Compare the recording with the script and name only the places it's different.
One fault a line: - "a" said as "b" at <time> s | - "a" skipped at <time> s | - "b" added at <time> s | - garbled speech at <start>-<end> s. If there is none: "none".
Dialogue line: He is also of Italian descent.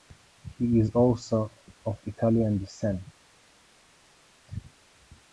none